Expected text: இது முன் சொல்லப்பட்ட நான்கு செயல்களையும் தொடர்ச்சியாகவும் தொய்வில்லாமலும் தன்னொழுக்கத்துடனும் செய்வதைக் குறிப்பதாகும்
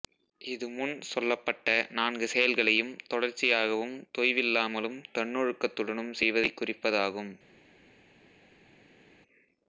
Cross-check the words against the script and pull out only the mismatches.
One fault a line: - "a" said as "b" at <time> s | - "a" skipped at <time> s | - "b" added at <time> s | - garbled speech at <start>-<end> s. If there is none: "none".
none